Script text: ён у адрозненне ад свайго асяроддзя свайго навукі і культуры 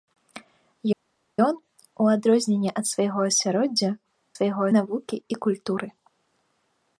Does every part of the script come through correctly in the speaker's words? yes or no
yes